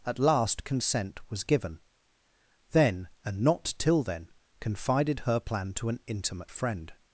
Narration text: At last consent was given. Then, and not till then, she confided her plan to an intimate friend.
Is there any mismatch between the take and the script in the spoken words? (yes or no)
yes